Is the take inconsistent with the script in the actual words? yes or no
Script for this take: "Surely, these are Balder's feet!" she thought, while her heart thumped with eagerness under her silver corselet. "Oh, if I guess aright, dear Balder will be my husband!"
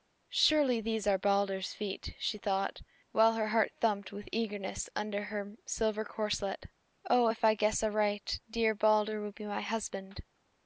no